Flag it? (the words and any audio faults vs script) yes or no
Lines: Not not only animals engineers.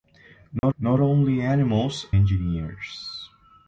yes